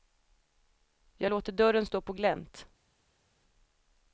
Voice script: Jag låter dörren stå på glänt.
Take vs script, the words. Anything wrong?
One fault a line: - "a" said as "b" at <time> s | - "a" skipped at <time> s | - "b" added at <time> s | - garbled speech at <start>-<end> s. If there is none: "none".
none